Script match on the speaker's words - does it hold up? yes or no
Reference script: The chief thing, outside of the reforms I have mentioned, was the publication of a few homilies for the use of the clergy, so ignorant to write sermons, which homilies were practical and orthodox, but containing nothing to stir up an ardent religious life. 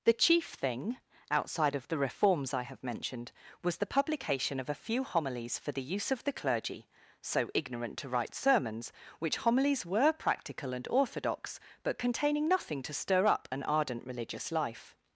yes